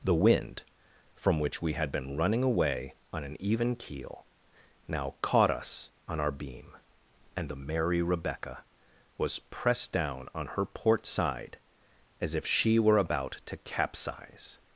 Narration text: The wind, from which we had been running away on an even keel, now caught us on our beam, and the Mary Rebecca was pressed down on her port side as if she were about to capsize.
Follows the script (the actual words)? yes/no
yes